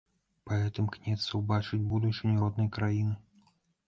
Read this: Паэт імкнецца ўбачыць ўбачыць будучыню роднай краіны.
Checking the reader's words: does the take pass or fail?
fail